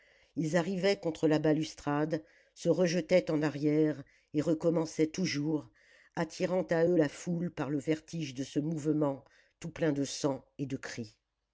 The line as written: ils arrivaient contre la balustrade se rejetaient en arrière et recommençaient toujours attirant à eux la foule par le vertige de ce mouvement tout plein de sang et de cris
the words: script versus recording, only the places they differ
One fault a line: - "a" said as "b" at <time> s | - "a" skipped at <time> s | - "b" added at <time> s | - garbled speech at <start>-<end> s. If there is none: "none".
none